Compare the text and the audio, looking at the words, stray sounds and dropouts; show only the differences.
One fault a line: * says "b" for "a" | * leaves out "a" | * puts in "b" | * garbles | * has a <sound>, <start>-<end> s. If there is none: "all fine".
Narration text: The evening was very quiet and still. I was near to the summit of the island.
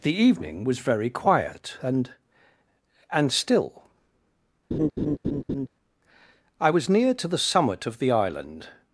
* puts in "and"
* has a laugh, 4.7-5.7 s